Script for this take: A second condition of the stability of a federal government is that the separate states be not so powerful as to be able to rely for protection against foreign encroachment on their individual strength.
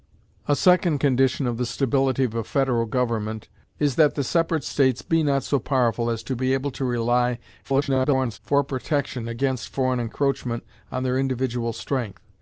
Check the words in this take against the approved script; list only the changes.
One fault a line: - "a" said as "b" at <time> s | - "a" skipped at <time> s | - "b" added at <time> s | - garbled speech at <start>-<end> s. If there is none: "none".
- garbled speech at 7.6-8.4 s